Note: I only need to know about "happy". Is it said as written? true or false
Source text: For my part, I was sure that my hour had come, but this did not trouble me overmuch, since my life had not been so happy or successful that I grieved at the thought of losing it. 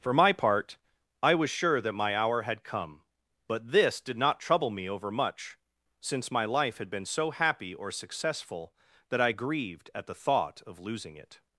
true